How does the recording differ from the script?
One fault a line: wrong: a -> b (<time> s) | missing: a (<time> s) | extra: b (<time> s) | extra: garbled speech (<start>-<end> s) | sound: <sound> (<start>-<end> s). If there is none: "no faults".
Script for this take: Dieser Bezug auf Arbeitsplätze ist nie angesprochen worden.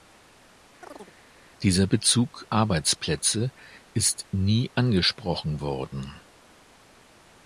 sound: chirp (0.8-1.1 s)
missing: auf (2.5 s)